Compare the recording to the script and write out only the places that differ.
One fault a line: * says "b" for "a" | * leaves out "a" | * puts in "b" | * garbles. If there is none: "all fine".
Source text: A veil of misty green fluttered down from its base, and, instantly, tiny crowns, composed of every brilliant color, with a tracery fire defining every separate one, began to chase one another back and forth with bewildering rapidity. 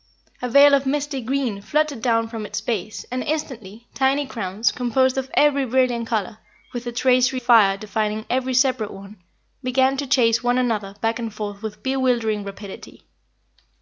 all fine